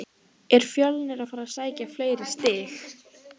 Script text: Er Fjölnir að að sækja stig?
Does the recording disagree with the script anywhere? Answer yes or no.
yes